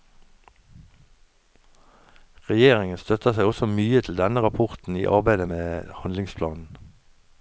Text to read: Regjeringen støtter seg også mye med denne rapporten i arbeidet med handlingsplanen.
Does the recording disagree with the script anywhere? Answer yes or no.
yes